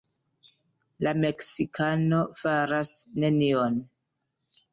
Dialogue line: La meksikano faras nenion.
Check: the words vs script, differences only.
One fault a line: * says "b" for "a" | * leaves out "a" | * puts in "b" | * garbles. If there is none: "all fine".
all fine